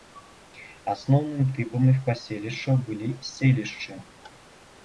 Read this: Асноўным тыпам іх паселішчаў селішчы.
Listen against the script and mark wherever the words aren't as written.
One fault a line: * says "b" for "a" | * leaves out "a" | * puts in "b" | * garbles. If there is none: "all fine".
* puts in "былі"